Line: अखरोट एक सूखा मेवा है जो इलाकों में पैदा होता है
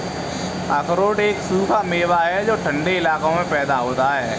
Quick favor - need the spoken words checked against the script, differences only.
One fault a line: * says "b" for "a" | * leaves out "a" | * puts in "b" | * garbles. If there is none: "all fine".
* puts in "ठन्डे"